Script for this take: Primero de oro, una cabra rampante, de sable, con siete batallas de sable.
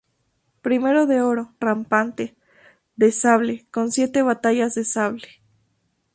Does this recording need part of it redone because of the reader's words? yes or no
yes